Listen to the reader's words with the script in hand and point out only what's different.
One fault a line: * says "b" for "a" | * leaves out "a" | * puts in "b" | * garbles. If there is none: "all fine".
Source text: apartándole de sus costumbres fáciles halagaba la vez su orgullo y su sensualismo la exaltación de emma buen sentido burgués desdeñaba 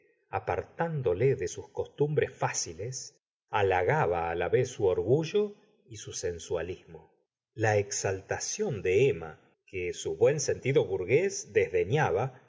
* puts in "que su"